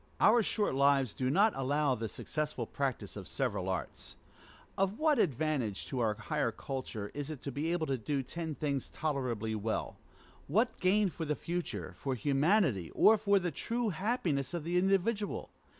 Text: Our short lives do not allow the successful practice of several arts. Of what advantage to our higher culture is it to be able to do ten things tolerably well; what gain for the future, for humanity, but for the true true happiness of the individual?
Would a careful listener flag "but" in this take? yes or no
yes